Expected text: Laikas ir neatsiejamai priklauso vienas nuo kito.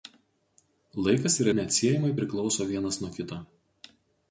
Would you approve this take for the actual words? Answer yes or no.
yes